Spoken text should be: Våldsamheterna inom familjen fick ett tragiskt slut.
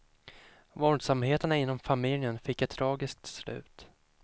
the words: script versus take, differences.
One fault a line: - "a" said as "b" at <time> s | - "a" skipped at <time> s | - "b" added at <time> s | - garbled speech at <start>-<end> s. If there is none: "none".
none